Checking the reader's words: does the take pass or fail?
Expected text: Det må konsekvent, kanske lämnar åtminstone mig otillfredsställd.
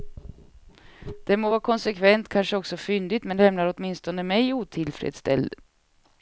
fail